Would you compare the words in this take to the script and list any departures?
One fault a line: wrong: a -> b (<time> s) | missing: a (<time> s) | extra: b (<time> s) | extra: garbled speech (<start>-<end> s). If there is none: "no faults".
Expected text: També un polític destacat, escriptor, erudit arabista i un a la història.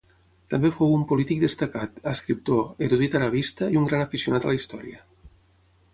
extra: fou (0.8 s)
extra: gran aficionat (3.9 s)